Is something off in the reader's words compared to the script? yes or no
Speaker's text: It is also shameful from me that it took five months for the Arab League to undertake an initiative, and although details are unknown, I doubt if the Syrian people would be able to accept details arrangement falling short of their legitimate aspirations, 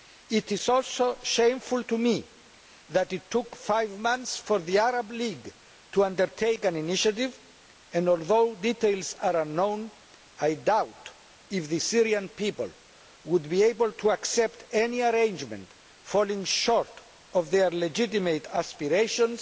yes